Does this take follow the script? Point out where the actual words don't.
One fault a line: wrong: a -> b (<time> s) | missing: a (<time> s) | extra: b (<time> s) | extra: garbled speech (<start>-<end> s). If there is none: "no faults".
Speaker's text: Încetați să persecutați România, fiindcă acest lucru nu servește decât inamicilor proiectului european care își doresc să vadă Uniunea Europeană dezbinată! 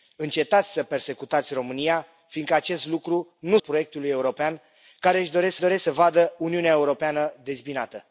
missing: servește decât inamicilor (3.6 s)
extra: doresc (5.6 s)